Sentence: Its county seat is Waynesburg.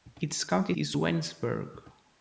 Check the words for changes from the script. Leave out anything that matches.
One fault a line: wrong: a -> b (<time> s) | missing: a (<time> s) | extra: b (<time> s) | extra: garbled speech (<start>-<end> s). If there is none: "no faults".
missing: seat (0.7 s)